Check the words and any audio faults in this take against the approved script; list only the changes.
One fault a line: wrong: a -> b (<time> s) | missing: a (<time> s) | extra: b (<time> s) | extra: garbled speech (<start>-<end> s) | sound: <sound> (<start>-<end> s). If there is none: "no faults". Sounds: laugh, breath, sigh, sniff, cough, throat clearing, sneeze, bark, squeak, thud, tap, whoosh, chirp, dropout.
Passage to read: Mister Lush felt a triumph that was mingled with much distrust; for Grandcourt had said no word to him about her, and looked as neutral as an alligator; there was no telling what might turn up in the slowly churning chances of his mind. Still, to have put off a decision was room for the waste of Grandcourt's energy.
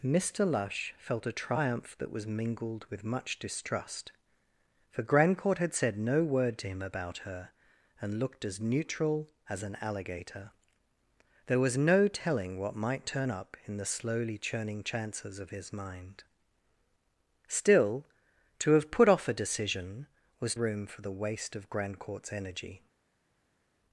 no faults